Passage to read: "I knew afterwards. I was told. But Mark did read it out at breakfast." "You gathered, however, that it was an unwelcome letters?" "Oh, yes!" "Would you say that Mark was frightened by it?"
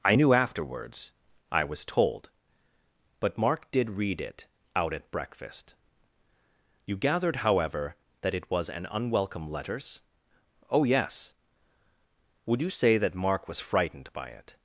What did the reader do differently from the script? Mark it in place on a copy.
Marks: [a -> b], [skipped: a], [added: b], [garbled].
"I knew afterwards. I was told. But Mark did read it out at breakfast." "You gathered, however, that it was an unwelcome letters?" "Oh, yes!" "Would you say that Mark was frightened by it?"